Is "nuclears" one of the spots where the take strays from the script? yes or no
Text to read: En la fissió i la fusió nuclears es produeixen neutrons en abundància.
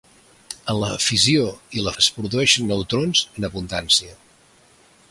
yes